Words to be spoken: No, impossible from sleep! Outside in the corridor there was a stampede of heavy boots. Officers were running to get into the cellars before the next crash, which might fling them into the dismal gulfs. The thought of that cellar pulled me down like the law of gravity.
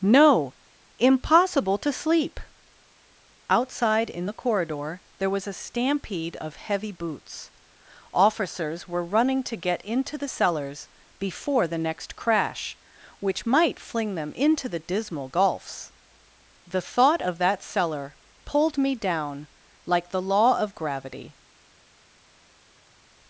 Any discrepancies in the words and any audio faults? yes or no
yes